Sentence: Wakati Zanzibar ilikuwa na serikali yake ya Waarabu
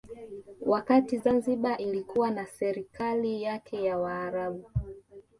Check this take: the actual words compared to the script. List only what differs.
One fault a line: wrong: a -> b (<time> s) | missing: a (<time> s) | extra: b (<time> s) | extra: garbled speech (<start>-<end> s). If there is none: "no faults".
no faults